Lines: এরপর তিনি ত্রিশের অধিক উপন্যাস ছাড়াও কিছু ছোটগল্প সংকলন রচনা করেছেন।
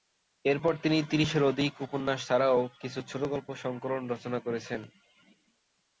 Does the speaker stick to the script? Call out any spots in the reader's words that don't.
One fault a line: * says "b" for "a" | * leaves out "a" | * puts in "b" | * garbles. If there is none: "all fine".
all fine